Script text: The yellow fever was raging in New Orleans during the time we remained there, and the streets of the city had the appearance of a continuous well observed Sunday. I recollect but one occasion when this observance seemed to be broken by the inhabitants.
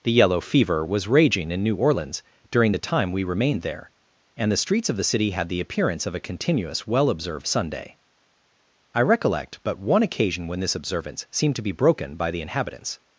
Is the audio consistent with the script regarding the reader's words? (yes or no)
yes